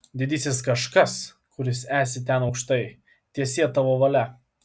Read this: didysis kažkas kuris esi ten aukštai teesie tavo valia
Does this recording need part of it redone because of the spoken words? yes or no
no